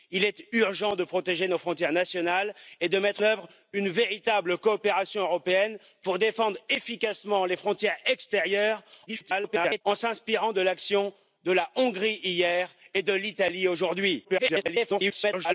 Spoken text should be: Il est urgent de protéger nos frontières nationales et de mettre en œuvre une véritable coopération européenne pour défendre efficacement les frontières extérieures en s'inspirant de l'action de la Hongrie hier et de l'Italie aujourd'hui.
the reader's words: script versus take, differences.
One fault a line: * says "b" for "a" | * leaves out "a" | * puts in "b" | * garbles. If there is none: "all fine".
* leaves out "en"
* garbles
* garbles